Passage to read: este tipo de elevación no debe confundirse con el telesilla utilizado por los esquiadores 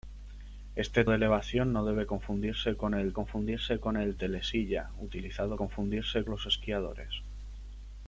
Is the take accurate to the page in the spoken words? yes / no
no